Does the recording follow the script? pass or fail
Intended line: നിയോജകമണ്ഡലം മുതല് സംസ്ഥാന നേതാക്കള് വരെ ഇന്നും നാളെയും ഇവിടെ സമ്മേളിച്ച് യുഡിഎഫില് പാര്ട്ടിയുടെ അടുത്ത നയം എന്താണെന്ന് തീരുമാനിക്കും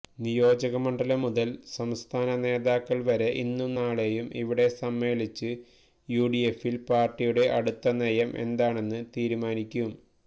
pass